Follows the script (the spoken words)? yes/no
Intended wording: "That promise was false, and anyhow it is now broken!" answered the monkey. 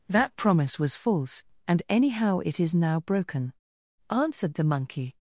yes